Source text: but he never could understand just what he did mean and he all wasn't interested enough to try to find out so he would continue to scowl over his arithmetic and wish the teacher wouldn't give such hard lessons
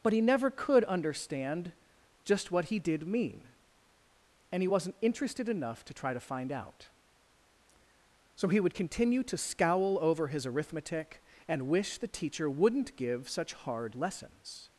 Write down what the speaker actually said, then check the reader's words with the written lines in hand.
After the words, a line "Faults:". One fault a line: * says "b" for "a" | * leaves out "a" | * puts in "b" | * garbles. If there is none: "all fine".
but he never could understand just what he did mean and he wasn't interested enough to try to find out so he would continue to scowl over his arithmetic and wish the teacher wouldn't give such hard lessons
Faults:
* leaves out "all"